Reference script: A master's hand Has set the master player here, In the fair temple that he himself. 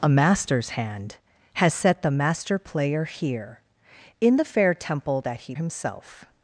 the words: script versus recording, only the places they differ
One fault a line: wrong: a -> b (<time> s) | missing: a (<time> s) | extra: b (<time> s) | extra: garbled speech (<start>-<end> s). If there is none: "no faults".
no faults